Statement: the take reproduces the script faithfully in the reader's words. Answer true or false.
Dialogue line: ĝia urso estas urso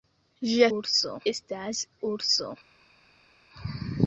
true